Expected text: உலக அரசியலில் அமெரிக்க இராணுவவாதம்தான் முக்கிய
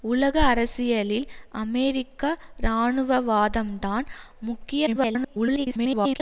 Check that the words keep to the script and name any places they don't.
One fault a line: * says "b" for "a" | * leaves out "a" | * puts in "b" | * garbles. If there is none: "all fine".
* garbles